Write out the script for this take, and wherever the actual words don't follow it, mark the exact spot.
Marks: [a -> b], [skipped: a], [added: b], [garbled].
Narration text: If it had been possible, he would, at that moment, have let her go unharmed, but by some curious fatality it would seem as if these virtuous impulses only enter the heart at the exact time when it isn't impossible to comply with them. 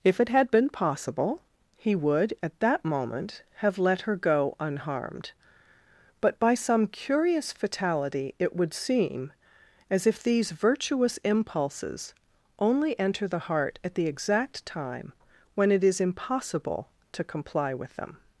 If it had been possible, he would, at that moment, have let her go unharmed, but by some curious fatality it would seem as if these virtuous impulses only enter the heart at the exact time when it [isn't -> is] impossible to comply with them.